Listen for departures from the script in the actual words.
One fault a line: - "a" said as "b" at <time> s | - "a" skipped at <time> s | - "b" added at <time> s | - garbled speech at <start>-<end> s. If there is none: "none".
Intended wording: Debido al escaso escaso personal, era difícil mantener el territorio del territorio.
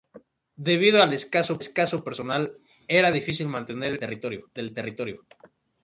none